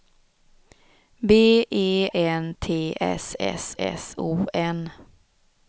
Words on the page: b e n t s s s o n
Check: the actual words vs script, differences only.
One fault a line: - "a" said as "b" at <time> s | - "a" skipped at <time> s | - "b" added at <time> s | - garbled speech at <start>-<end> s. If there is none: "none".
none